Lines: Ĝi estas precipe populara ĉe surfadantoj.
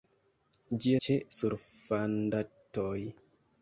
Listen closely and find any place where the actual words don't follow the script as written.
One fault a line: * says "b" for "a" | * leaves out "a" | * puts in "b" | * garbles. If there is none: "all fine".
* leaves out "estas precipe populara"